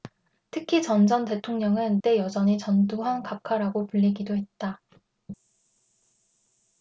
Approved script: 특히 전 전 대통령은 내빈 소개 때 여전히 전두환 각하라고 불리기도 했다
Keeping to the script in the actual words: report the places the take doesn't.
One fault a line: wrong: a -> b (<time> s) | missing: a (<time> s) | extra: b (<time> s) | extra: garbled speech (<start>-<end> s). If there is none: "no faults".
missing: 내빈 소개 (2.0 s)